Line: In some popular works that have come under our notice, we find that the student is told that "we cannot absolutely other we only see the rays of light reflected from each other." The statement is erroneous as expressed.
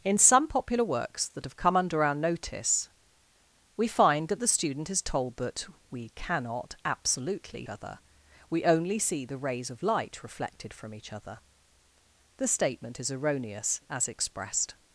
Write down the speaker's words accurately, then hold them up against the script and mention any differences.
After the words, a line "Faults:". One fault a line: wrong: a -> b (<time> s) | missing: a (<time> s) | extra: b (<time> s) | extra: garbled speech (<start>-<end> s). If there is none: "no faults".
In some popular works that have come under our notice, we find that the student is told that "we cannot absolutely other we only see the rays of light reflected from each other." The statement is erroneous as expressed.
Faults:
no faults